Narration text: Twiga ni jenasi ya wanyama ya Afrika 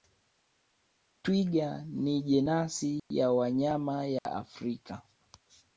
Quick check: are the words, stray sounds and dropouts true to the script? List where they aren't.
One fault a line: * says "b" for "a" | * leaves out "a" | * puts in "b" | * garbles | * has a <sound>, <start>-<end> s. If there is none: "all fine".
* has a dropout, 3.0-3.1 s
* has a dropout, 4.2-4.3 s